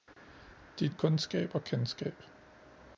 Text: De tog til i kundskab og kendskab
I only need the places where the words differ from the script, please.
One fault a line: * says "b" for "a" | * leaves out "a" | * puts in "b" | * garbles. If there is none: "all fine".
* leaves out "tog til"